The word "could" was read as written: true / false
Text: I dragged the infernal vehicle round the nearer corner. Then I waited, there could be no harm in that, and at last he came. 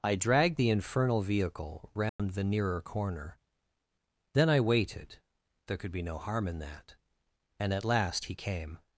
true